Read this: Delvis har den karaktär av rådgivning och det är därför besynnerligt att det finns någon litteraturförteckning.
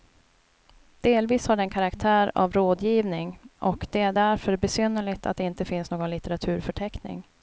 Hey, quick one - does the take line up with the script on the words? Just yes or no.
no